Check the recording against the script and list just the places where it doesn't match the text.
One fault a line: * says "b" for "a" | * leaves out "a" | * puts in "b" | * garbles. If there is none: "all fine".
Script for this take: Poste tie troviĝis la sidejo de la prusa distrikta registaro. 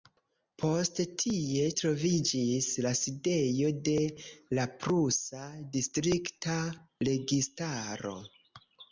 all fine